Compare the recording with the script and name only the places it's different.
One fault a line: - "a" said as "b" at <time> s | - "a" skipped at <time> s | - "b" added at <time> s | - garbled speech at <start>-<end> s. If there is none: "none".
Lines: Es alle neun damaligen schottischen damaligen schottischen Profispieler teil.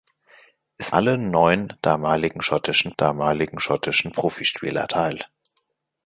none